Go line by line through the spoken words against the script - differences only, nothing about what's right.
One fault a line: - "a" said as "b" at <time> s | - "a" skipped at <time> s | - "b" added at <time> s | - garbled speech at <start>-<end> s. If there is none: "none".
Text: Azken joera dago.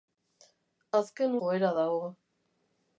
none